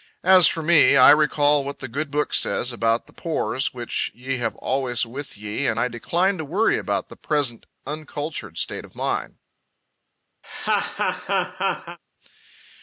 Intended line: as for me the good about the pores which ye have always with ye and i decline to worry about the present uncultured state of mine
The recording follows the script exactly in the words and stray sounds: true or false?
false